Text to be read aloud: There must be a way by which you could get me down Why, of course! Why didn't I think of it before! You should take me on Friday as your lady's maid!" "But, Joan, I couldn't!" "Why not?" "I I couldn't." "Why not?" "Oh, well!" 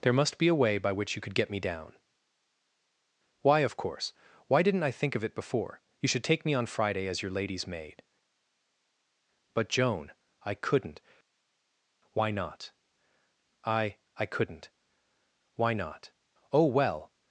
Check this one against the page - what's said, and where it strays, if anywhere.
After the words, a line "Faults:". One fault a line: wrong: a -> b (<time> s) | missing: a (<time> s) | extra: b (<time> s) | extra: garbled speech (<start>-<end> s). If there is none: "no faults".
There must be a way by which you could get me down Why, of course! Why didn't I think of it before! You should take me on Friday as your lady's maid!" "But, Joan, I couldn't!" "Why not?" "I I couldn't." "Why not?" "Oh, well!"
Faults:
no faults